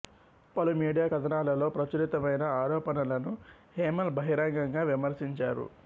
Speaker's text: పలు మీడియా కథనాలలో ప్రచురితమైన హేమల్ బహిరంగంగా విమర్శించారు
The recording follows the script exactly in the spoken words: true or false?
false